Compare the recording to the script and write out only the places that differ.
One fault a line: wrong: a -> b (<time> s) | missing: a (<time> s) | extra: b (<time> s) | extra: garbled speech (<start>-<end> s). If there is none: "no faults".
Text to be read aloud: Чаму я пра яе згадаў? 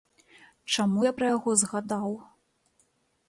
wrong: яе -> яго (1.4 s)